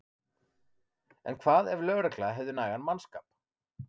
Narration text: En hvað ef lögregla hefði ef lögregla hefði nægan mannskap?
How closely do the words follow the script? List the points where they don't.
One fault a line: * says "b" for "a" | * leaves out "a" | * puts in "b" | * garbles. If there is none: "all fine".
* leaves out "ef lögregla hefði"